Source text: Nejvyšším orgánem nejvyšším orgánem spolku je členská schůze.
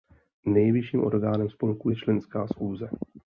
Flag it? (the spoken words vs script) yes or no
yes